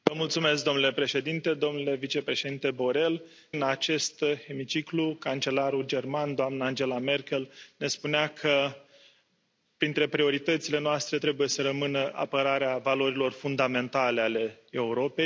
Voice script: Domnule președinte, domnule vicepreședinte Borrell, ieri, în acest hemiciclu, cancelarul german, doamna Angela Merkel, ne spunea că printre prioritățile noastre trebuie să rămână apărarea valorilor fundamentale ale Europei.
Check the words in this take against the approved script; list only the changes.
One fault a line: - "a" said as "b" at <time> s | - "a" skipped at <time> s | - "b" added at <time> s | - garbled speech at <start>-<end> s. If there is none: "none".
- "ieri" skipped at 3.2 s